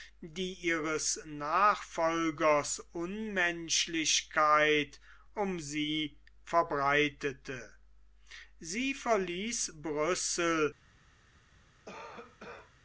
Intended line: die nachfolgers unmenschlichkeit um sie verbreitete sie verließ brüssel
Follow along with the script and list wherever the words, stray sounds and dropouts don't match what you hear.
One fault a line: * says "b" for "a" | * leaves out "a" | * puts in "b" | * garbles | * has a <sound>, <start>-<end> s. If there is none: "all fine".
* puts in "ihres"
* has a cough, 11.9-12.7 s